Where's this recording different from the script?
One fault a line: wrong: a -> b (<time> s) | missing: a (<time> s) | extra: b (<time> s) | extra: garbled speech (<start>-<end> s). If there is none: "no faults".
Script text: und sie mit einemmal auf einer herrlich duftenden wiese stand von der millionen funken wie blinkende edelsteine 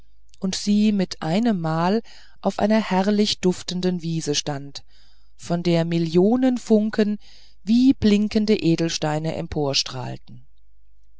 no faults